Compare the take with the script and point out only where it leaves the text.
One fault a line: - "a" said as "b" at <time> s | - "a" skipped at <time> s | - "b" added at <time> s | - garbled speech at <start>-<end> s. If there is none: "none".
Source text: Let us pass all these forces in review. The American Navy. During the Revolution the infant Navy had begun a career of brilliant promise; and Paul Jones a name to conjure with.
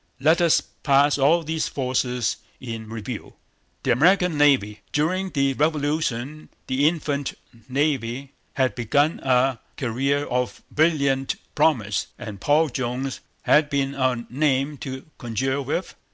- "had been" added at 13.4 s